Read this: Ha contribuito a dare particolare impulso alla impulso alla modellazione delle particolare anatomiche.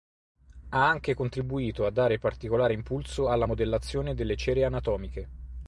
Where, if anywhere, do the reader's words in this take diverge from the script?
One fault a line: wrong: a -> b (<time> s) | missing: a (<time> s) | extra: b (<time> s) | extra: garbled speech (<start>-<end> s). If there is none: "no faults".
extra: anche (0.9 s)
missing: impulso alla (3.5 s)
wrong: particolare -> cere (4.4 s)